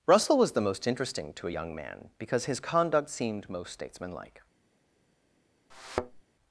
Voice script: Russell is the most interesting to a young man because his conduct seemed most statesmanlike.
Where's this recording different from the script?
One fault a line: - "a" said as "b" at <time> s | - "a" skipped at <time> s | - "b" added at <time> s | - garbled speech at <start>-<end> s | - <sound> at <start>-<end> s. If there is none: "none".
- "is" said as "was" at 0.4 s
- thud at 5.7-6.2 s